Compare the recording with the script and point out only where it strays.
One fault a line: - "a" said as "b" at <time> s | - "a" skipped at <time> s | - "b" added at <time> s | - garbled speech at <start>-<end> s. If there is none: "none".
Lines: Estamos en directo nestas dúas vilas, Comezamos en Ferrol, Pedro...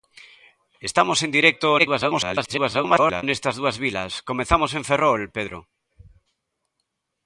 - garbled speech at 1.8-3.2 s